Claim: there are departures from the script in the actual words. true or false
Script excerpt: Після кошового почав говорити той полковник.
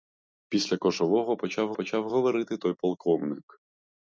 true